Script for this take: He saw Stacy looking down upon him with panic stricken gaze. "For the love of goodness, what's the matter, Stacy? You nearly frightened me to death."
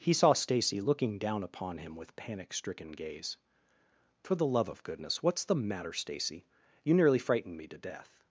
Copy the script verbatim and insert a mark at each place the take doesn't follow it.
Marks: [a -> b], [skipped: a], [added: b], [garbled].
He saw Stacy looking down upon him with panic stricken gaze. "For the love of goodness, what's the matter, Stacy? You nearly frightened me to death."